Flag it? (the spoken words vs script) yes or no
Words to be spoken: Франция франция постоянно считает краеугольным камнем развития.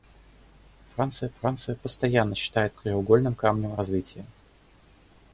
no